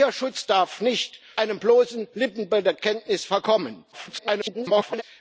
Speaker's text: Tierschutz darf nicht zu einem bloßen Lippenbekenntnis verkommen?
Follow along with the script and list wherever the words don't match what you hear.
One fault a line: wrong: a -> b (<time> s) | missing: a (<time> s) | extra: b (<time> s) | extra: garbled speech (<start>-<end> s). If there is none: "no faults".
missing: zu (1.2 s)
extra: garbled speech (3.9-5.0 s)